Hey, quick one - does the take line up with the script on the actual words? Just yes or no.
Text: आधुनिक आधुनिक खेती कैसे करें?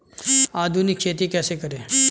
no